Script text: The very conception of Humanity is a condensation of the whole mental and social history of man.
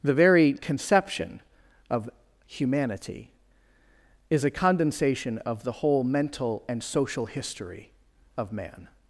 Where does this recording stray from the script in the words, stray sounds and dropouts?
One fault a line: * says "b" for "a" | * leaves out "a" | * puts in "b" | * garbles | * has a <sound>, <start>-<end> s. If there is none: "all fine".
all fine